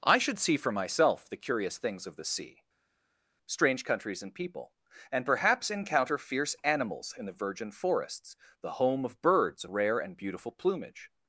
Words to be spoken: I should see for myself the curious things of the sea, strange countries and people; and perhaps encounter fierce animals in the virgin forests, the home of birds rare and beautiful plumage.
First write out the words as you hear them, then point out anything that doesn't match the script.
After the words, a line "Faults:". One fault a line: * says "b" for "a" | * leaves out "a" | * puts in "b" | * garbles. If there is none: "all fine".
I should see for myself the curious things of the sea, strange countries and people; and perhaps encounter fierce animals in the virgin forests, the home of birds rare and beautiful plumage.
Faults:
all fine